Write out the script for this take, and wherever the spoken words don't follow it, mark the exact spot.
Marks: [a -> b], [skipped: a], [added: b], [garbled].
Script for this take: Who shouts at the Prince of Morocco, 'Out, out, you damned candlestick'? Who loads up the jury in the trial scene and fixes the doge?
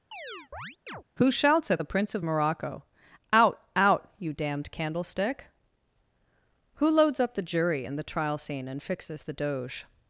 Who shouts at the Prince of Morocco, 'Out, out, you damned candlestick'? Who loads up the jury in the trial scene and fixes the doge?